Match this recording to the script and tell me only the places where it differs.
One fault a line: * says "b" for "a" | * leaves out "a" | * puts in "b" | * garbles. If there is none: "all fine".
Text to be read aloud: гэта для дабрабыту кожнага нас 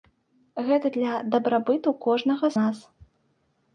all fine